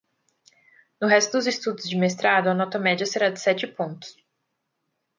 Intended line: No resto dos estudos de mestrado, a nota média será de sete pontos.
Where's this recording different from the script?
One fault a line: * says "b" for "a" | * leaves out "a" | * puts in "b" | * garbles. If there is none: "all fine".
all fine